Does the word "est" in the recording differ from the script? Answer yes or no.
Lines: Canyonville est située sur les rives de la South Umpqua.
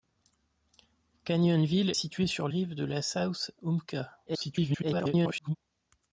yes